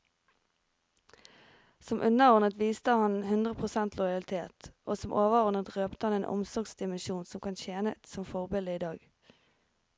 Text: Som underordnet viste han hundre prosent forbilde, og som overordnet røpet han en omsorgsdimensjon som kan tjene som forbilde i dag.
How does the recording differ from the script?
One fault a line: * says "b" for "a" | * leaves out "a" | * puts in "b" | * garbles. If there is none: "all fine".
* says "lojalitet" for "forbilde"